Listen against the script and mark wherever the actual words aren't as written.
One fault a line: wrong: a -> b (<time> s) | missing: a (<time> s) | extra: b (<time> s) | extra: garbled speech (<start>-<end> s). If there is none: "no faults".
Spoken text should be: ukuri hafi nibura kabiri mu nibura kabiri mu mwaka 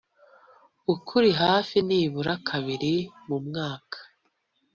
missing: nibura kabiri mu (3.4 s)